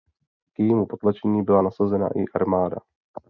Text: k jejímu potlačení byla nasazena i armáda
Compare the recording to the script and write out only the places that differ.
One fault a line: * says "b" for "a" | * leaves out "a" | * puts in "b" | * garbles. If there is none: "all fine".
all fine